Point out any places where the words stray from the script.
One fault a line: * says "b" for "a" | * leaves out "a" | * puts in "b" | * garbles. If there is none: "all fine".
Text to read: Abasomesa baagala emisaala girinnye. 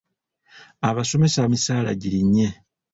* leaves out "baagala"